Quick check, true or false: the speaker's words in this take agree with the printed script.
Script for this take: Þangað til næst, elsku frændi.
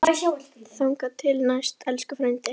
true